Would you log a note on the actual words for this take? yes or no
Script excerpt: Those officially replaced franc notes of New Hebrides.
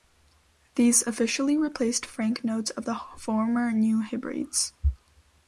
yes